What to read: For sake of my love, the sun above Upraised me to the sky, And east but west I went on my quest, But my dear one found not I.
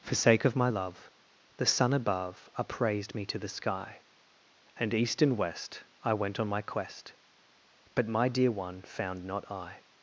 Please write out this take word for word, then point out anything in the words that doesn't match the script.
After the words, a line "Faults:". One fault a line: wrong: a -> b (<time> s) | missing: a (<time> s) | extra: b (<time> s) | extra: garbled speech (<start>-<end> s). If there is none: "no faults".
For sake of my love, the sun above Upraised me to the sky, And east and west I went on my quest, But my dear one found not I.
Faults:
wrong: but -> and (5.2 s)